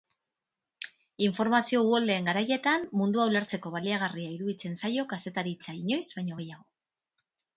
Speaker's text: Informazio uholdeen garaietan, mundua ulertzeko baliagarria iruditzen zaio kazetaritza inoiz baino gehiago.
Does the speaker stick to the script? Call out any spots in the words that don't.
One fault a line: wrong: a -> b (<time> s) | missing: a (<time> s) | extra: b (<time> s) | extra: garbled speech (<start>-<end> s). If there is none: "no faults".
no faults